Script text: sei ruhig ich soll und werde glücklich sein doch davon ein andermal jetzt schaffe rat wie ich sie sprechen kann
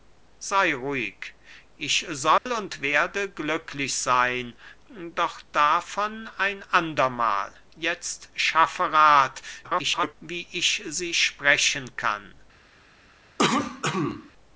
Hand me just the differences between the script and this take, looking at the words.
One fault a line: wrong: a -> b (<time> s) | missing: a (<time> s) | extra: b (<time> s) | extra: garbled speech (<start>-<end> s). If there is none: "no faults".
extra: garbled speech (9.6-10.2 s)